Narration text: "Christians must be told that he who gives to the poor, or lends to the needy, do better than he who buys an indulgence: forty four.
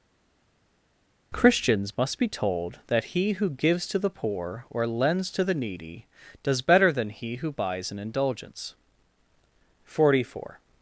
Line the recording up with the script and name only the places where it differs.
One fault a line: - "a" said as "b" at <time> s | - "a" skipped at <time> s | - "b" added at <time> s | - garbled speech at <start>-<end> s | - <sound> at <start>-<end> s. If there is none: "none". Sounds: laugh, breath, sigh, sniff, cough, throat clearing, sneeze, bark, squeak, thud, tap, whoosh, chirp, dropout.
- "do" said as "does" at 6.4 s